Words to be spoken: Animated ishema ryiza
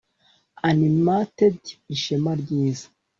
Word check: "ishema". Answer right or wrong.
right